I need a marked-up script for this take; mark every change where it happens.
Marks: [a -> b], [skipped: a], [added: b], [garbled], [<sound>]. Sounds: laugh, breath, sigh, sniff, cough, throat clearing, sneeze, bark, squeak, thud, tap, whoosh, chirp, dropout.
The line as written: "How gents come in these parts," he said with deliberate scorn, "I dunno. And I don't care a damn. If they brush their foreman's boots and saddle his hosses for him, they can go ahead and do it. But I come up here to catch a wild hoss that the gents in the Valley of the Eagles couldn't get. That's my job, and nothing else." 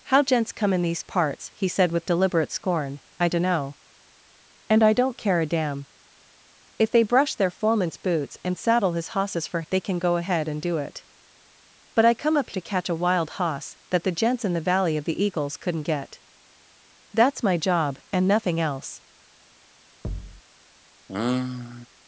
"How gents come in these parts," he said with deliberate scorn, "I dunno. And I don't care a damn. If they brush their foreman's boots and saddle his hosses for [skipped: him,] they can go ahead and do it. But I come up [skipped: here] to catch a wild hoss that the gents in the Valley of the Eagles couldn't get. That's my job, and nothing else." [thud] [sigh]